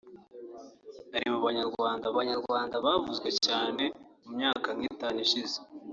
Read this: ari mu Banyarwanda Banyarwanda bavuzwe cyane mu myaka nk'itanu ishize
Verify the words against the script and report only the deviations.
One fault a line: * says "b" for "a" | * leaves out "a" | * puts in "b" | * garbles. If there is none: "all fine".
all fine